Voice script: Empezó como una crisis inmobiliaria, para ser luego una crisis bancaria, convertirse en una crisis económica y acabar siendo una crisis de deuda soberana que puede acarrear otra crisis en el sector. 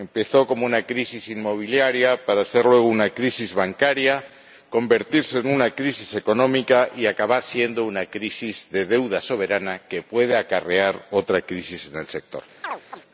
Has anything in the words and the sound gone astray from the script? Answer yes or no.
yes